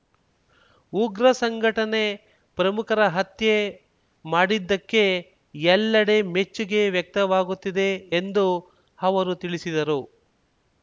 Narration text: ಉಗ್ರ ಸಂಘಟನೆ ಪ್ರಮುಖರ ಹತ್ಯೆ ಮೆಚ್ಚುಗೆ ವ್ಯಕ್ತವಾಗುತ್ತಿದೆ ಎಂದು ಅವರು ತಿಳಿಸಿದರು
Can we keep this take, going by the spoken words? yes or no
no